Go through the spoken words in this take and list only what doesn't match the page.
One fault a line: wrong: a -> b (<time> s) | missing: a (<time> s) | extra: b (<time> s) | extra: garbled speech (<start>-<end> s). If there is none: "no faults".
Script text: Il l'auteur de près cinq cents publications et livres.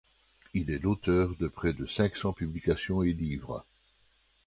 extra: est (0.7 s)
extra: de (1.7 s)